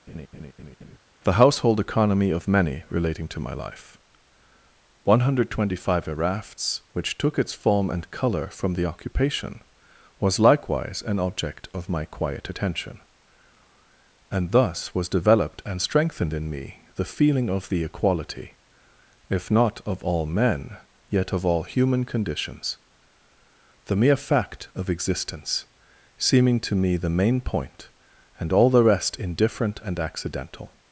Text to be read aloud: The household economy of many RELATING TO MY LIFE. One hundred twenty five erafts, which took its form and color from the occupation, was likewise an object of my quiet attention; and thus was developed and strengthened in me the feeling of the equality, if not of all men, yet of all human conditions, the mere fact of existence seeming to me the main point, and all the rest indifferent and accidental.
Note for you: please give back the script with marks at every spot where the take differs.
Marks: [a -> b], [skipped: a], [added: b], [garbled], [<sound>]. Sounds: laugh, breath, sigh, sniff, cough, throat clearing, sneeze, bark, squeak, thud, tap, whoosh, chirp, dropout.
[laugh] The household economy of many RELATING TO MY LIFE. One hundred twenty five erafts, which took its form and color from the occupation, was likewise an object of my quiet attention; and thus was developed and strengthened in me the feeling of the equality, if not of all men, yet of all human conditions, the mere fact of existence seeming to me the main point, and all the rest indifferent and accidental.